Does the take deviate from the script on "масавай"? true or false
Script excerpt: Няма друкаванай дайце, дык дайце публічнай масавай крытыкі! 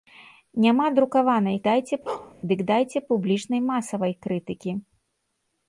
false